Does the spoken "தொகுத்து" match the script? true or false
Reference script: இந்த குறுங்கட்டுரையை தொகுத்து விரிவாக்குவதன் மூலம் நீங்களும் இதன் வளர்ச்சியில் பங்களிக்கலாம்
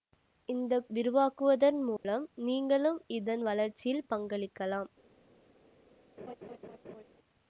false